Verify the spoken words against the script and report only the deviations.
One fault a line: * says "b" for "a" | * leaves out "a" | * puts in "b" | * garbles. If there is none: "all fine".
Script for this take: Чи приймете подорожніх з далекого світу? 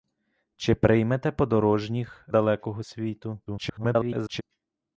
* leaves out "з"
* garbles